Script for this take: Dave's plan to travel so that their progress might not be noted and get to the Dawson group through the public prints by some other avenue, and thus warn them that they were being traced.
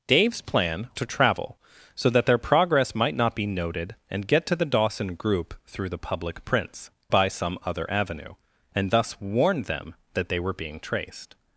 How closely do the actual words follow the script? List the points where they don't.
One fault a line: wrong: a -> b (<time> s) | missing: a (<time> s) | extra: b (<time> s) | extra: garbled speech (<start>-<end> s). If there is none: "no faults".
no faults